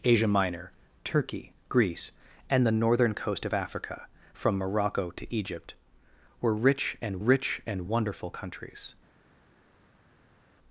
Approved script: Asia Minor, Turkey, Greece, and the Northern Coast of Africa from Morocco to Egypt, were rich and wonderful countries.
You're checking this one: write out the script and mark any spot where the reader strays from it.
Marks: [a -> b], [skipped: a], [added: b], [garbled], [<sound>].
Asia Minor, Turkey, Greece, and the Northern Coast of Africa from Morocco to Egypt, were rich and [added: rich and] wonderful countries.